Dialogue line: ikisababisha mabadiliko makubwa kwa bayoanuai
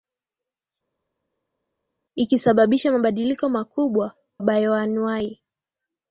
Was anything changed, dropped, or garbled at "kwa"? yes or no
yes